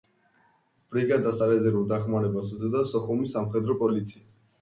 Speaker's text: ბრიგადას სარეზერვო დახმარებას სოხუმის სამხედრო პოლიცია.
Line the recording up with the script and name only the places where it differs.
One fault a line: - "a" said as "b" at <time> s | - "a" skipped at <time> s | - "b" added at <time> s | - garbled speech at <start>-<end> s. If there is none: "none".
- "უწევდა" added at 2.6 s